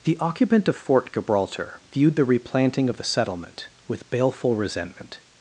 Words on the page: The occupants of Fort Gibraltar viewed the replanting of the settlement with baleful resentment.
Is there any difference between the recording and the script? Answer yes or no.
yes